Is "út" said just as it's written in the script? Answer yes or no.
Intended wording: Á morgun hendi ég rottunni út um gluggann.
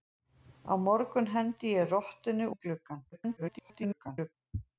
no